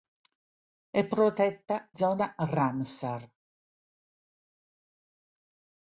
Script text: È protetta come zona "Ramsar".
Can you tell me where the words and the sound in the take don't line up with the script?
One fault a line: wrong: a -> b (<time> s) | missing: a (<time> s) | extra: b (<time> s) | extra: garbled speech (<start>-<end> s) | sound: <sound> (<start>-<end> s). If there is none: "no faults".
missing: come (1.9 s)